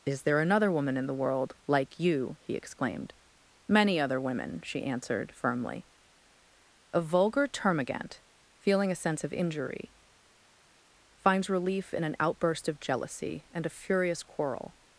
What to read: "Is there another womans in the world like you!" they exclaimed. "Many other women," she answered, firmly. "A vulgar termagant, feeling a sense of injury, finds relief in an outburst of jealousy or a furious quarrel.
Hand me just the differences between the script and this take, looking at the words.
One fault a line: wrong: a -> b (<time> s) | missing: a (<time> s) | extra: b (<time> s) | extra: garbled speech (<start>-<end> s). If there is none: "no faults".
wrong: womans -> woman (0.7 s)
wrong: they -> he (2.4 s)
wrong: or -> and (13.5 s)